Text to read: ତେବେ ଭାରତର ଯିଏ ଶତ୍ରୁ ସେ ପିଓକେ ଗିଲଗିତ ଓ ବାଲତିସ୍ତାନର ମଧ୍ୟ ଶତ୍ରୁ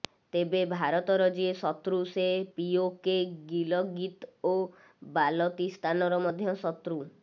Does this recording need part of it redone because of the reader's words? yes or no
no